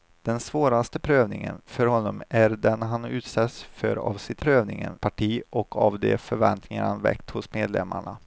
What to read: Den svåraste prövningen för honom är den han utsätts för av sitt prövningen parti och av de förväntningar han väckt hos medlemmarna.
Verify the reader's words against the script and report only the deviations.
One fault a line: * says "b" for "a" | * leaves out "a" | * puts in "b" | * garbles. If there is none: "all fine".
all fine